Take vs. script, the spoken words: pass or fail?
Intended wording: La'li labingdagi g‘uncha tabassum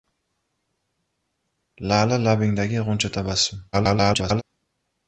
fail